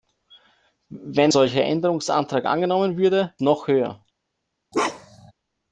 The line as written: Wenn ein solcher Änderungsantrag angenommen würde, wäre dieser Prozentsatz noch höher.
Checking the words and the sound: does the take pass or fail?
fail